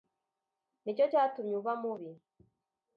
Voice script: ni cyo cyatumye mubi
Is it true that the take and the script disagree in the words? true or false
true